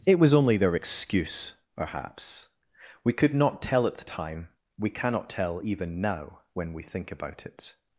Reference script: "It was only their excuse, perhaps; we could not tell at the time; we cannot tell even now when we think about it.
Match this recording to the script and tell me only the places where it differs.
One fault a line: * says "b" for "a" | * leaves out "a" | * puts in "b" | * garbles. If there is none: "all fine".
all fine